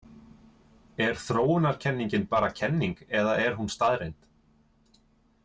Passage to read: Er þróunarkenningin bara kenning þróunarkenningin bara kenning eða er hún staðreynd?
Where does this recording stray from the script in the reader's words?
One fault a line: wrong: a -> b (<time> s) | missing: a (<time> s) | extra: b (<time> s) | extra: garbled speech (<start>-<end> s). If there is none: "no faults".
missing: þróunarkenningin bara kenning (3.0 s)